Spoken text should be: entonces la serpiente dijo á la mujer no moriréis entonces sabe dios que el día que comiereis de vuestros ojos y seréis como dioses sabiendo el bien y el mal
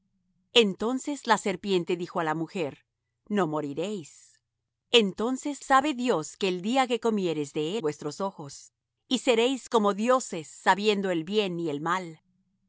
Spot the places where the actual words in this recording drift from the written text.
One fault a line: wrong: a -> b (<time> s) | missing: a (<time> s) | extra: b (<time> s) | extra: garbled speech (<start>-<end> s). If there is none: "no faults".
no faults